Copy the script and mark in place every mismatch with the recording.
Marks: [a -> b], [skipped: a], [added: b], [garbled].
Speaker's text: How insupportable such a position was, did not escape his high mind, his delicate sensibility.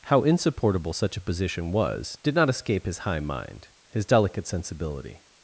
How insupportable such a position was, did not escape his high mind, his delicate sensibility.